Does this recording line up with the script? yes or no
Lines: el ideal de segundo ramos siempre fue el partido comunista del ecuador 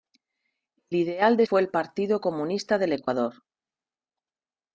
no